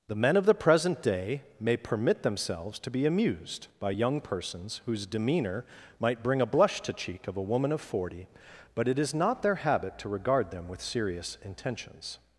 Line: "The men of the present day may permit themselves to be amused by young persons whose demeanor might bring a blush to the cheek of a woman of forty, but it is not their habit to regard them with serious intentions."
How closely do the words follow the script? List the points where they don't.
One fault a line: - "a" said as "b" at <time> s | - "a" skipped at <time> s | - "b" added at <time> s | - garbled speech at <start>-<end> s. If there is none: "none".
- "the" skipped at 6.9 s